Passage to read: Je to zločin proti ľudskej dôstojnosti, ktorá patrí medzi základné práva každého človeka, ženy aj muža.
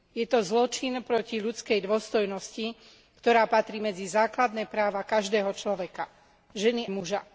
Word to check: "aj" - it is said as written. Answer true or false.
false